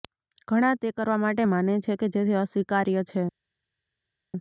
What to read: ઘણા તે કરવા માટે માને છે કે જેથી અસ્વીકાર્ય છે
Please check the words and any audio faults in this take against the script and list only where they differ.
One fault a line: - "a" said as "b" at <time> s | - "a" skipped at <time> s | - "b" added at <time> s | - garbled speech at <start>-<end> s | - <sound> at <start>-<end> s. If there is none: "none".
none